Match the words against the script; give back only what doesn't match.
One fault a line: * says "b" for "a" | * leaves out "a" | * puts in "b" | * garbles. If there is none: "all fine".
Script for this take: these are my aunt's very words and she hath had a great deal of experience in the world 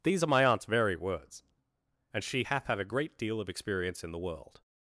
all fine